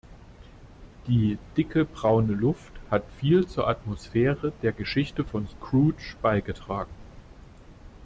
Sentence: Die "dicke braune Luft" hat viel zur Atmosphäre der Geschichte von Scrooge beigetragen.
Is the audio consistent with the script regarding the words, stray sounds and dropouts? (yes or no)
yes